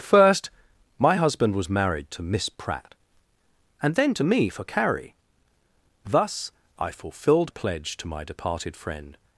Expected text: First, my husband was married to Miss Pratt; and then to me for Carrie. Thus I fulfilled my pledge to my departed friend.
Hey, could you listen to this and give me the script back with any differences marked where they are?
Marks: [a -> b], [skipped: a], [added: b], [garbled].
First, my husband was married to Miss Pratt; and then to me for Carrie. Thus I fulfilled [skipped: my] pledge to my departed friend.